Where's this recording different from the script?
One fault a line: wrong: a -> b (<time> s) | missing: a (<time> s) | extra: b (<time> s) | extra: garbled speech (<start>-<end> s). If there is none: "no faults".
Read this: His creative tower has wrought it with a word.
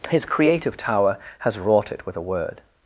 no faults